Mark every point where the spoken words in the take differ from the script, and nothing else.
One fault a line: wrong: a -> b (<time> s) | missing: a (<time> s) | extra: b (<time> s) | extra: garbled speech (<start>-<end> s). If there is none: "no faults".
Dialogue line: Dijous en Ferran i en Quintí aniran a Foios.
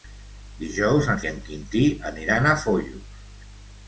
missing: Ferran (1.2 s)